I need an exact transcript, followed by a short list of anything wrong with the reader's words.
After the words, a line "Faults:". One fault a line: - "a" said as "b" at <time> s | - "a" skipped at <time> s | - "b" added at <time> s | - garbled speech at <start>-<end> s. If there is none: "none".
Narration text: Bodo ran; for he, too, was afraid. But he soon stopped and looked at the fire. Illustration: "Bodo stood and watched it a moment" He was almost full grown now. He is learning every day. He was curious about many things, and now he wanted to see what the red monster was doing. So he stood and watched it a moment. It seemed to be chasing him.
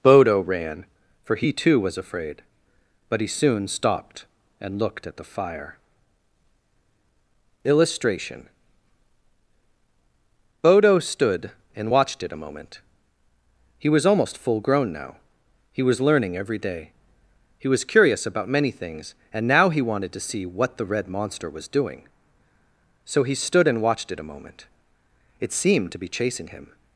Bodo ran; for he, too, was afraid. But he soon stopped and looked at the fire. Illustration: "Bodo stood and watched it a moment" He was almost full grown now. He was learning every day. He was curious about many things, and now he wanted to see what the red monster was doing. So he stood and watched it a moment. It seemed to be chasing him.
Faults:
- "is" said as "was" at 15.8 s